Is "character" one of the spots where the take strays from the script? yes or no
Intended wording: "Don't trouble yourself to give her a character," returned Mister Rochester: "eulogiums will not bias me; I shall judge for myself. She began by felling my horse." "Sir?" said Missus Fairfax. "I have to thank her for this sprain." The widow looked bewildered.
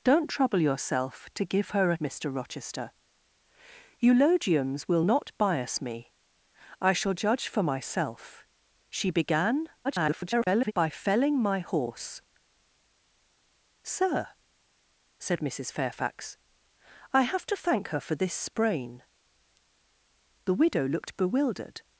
yes